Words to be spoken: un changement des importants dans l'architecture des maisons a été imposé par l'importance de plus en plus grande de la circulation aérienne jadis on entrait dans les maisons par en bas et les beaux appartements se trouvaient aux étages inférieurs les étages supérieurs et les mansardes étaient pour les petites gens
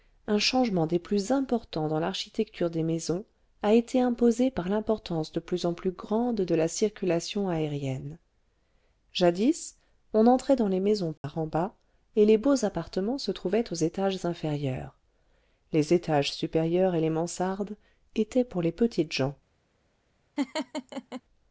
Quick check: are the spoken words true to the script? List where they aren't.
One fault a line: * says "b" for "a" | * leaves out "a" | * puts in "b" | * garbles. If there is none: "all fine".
* puts in "plus"